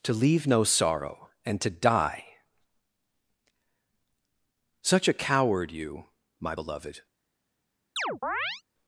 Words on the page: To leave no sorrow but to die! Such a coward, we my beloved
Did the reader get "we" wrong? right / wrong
wrong